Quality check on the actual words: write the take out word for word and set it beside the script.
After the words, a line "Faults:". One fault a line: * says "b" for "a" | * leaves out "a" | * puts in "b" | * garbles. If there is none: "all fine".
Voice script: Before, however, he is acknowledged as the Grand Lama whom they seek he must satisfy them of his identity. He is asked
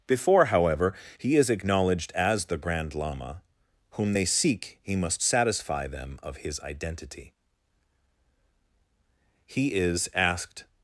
Before, however, he is acknowledged as the Grand Lama whom they seek he must satisfy them of his identity. He is asked
Faults:
all fine